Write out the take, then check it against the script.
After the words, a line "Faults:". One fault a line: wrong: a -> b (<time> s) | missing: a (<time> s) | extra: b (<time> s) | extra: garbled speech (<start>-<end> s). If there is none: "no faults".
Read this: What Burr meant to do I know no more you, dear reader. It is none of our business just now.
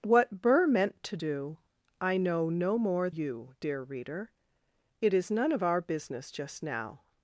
What Burr meant to do I know no more you, dear reader. It is none of our business just now.
Faults:
no faults